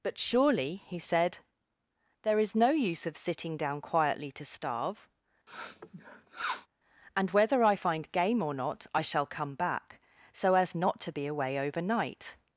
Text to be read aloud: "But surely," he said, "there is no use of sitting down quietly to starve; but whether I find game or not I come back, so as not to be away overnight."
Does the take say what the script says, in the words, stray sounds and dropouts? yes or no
no